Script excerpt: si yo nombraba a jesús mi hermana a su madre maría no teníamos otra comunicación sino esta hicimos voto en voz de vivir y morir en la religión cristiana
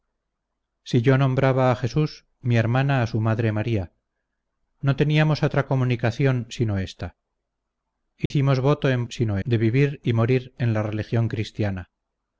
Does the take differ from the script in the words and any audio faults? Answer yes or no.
yes